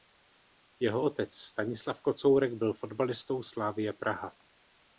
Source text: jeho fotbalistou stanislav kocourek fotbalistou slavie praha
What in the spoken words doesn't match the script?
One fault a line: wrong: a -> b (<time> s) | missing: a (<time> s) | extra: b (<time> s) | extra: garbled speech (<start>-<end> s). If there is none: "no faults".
wrong: fotbalistou -> otec (1.0 s)
extra: byl (2.5 s)